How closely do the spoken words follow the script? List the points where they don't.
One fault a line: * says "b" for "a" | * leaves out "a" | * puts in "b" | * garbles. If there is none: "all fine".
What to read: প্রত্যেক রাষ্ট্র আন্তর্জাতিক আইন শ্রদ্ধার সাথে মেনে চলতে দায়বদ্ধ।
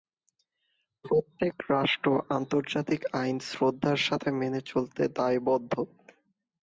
all fine